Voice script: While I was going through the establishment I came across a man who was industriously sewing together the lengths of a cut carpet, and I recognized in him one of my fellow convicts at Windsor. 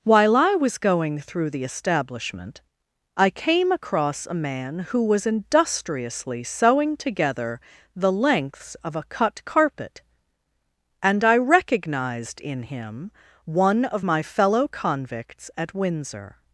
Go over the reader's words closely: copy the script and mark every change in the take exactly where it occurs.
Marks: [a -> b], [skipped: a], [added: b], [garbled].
While I was going through the establishment I came across a man who was industriously sewing together the lengths of a cut carpet, and I recognized in him one of my fellow convicts at Windsor.